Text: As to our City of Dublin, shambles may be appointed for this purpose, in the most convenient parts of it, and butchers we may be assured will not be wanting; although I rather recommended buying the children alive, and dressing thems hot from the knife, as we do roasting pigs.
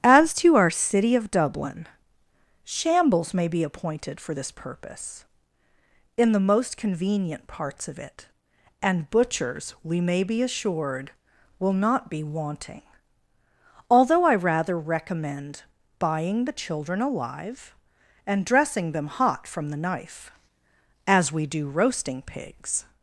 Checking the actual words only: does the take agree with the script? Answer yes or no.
no